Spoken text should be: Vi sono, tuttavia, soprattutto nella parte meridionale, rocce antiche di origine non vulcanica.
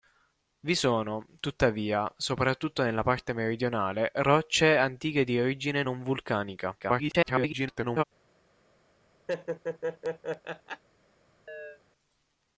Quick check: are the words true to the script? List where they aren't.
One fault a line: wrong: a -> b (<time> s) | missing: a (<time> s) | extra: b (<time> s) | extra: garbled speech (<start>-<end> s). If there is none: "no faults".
extra: garbled speech (6.8-8.0 s)